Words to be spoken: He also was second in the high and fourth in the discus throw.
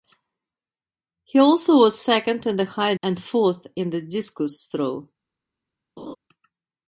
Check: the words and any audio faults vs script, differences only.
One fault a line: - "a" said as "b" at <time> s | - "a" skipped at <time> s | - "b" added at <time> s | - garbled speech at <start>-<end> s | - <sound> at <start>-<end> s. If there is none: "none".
- laugh at 6.0-6.2 s